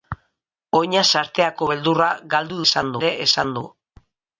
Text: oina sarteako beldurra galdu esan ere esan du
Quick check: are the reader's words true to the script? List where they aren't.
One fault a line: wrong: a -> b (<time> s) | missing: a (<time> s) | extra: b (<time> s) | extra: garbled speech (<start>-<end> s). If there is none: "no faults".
no faults